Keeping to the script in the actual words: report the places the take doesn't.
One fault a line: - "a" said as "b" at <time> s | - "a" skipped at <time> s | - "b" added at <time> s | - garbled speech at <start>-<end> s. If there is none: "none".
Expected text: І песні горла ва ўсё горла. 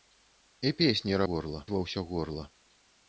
none